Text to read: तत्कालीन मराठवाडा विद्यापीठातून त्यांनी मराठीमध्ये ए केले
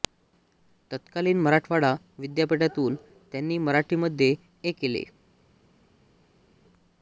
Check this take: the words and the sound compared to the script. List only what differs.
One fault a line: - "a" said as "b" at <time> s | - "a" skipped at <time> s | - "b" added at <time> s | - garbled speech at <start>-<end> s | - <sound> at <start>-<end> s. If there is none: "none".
none